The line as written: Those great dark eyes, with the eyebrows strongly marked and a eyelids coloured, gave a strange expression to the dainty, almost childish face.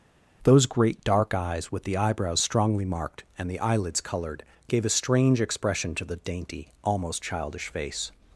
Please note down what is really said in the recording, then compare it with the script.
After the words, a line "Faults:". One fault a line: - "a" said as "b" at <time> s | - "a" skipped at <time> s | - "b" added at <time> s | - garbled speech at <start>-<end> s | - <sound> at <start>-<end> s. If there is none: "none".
Those great dark eyes, with the eyebrows strongly marked and the eyelids coloured, gave a strange expression to the dainty, almost childish face.
Faults:
- "a" said as "the" at 3.5 s